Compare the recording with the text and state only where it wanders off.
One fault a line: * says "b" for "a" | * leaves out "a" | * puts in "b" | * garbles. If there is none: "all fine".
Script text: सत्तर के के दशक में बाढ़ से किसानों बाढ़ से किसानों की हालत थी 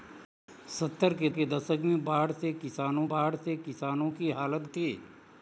all fine